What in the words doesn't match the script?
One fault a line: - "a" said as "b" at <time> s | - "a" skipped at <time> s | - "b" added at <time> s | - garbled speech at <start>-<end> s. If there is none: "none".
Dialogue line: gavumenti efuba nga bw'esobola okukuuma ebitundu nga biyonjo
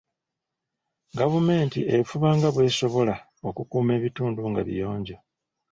none